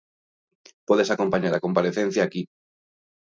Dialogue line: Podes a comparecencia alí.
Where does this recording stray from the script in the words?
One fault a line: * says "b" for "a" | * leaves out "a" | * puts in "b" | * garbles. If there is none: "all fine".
* puts in "acompañar"
* says "aquí" for "alí"